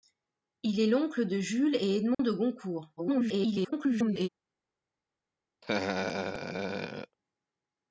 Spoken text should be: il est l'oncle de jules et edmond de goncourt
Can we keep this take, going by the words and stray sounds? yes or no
no